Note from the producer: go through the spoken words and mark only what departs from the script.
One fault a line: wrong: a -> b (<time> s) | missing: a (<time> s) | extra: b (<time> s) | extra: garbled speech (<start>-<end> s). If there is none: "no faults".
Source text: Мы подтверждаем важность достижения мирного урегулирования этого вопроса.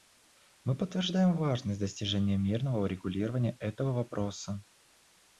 no faults